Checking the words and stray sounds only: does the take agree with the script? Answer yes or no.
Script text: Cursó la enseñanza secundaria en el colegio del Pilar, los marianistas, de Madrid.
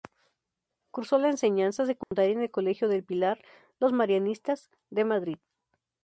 no